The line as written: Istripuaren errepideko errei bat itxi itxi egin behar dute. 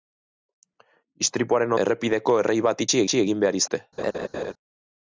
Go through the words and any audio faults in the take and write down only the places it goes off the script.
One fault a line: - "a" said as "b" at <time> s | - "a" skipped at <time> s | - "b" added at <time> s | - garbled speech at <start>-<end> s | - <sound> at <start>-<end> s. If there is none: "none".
- laugh at 4.0-4.5 s